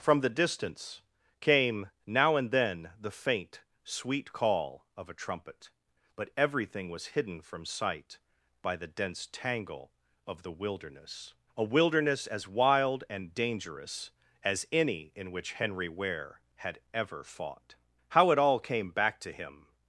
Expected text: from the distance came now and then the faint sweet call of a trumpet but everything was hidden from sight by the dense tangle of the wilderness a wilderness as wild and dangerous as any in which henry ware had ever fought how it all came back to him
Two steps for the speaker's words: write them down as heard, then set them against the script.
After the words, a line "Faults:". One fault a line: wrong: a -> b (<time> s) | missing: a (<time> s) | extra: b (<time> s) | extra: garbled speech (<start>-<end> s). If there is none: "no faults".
from the distance came now and then the faint sweet call of a trumpet but everything was hidden from sight by the dense tangle of the wilderness a wilderness as wild and dangerous as any in which henry ware had ever fought how it all came back to him
Faults:
no faults